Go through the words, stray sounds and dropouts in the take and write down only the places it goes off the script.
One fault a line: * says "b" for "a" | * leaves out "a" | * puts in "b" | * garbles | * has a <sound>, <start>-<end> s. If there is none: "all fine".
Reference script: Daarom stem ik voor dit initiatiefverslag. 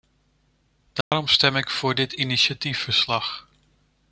* has a dropout, 1.0-1.1 s